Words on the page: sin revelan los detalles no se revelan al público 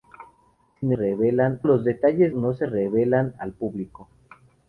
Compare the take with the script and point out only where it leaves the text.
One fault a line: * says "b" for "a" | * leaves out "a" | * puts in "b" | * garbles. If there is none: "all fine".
all fine